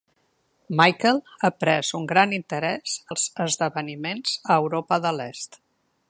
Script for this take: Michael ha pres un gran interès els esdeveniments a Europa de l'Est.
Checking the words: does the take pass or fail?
pass